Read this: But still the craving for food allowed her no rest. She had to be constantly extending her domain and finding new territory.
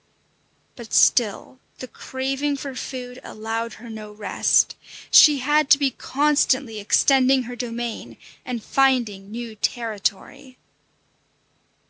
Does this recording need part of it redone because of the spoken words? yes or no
no